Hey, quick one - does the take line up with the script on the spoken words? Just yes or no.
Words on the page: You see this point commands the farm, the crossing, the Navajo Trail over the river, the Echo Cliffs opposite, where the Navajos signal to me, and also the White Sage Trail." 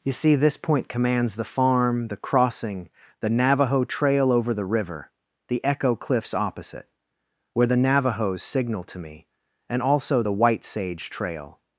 yes